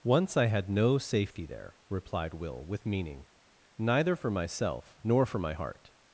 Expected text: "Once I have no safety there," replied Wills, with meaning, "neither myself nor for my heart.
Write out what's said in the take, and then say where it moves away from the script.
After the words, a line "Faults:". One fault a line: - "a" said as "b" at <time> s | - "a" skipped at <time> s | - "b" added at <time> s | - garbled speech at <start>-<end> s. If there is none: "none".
"Once I had no safety there," replied Will, with meaning, "neither for myself nor for my heart.
Faults:
- "have" said as "had" at 0.5 s
- "Wills" said as "Will" at 2.3 s
- "for" added at 4.2 s